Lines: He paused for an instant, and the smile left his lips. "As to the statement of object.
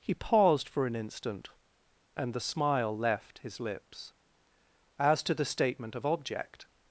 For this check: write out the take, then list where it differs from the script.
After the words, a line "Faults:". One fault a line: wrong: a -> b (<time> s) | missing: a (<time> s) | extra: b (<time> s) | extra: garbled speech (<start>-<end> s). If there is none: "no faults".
He paused for an instant, and the smile left his lips. "As to the statement of object.
Faults:
no faults